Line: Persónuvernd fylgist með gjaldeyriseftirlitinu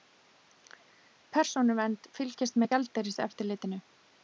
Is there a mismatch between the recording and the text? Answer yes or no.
no